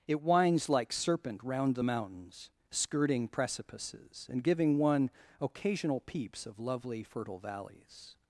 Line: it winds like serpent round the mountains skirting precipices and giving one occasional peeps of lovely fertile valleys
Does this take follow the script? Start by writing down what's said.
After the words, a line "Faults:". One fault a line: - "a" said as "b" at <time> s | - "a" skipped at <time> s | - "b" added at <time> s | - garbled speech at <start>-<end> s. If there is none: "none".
it winds like serpent round the mountains skirting precipices and giving one occasional peeps of lovely fertile valleys
Faults:
none